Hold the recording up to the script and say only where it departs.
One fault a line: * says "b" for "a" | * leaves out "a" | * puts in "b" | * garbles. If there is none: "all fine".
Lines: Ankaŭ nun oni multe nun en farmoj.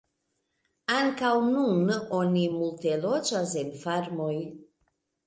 * says "loĝas" for "nun"